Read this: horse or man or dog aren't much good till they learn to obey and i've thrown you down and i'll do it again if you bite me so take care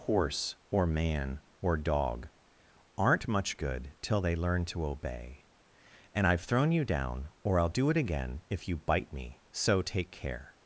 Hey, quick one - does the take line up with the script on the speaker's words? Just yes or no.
no